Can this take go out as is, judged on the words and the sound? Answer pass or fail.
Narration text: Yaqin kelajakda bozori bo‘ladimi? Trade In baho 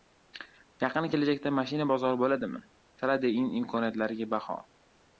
fail